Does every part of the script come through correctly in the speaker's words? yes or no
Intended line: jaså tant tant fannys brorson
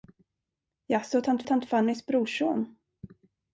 yes